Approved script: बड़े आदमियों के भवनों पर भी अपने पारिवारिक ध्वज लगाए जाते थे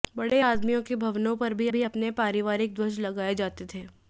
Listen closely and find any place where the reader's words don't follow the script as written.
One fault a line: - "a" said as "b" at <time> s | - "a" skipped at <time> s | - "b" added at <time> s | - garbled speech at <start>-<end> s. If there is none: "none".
- "भी" added at 1.7 s